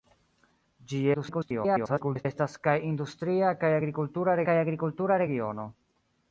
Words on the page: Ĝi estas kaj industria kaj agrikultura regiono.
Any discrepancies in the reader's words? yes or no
yes